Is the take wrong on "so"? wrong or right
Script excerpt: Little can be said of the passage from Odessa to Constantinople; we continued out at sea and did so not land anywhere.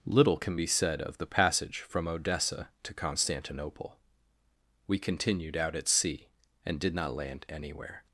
wrong